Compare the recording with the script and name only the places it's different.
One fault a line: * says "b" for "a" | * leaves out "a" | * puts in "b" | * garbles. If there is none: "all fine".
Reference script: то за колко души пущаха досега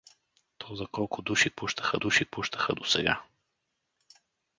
* puts in "души пущаха"